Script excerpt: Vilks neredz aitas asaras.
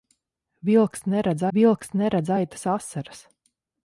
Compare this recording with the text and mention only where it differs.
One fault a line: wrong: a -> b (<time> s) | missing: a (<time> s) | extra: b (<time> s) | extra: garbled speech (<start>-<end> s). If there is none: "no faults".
extra: vilks neredz (1.6 s)